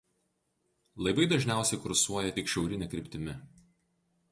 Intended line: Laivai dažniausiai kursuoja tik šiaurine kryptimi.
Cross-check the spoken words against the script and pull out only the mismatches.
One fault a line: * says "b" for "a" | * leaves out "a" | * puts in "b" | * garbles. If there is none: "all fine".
all fine